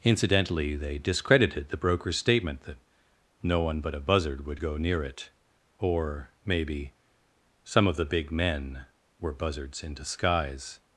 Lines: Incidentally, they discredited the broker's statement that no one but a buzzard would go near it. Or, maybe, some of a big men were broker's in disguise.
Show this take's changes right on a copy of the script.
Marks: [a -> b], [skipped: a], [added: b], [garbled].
Incidentally, they discredited the broker's statement that no one but a buzzard would go near it. Or, maybe, some of [a -> the] big men were [broker's -> buzzards] in disguise.